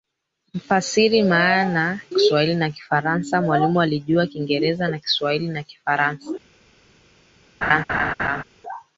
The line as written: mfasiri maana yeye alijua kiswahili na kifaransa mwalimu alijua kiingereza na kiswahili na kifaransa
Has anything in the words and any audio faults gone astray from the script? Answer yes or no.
yes